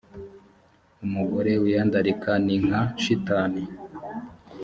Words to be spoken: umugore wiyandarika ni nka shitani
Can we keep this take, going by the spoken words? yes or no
yes